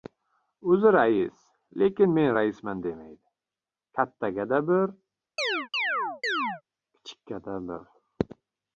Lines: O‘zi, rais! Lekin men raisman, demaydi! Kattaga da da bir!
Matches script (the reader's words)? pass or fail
fail